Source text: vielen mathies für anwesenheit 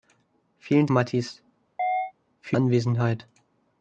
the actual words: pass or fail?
pass